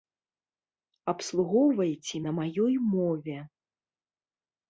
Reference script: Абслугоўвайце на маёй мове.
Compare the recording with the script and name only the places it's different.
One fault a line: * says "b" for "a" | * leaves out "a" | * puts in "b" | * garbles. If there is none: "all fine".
all fine